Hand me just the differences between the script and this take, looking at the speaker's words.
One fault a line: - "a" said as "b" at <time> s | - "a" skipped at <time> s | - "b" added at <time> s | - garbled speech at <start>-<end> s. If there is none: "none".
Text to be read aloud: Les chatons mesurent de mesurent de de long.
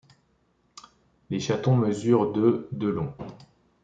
- "mesurent de" skipped at 2.7 s